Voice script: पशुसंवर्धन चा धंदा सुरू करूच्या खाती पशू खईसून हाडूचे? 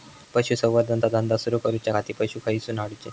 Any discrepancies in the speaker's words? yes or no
no